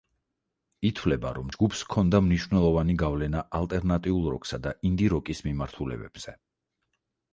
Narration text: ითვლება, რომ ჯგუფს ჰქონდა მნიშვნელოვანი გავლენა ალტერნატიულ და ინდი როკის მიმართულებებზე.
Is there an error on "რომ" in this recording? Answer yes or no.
no